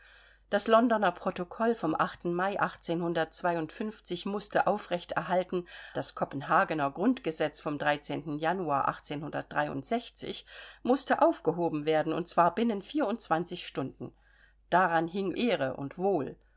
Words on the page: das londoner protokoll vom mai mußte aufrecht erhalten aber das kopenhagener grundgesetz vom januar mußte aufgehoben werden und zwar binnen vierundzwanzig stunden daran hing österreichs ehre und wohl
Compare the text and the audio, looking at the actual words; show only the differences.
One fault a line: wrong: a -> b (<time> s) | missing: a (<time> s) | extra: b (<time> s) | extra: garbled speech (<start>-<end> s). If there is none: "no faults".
missing: aber (5.7 s)
missing: österreichs (15.3 s)